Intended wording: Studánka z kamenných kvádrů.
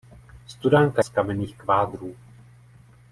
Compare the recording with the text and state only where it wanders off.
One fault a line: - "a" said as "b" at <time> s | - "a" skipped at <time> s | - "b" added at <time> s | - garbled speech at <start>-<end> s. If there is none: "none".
none